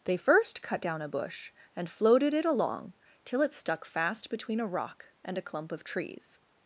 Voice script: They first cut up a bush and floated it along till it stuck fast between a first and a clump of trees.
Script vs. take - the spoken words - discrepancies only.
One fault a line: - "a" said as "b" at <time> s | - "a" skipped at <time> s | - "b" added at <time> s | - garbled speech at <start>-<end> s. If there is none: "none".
- "up" said as "down" at 0.8 s
- "first" said as "rock" at 4.7 s